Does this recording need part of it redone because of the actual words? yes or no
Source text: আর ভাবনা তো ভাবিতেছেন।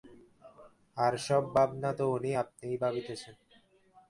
yes